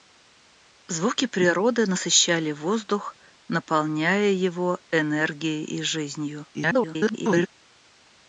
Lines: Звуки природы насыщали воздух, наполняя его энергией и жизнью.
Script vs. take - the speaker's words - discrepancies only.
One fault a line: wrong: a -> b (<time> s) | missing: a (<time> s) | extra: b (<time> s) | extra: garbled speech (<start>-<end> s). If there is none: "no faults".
extra: garbled speech (6.5-7.5 s)